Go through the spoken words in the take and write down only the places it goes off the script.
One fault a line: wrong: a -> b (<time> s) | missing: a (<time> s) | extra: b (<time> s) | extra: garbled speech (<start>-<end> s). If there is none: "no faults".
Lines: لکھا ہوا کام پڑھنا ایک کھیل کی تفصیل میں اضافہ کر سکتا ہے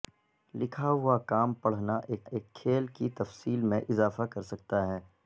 extra: ایک (2.3 s)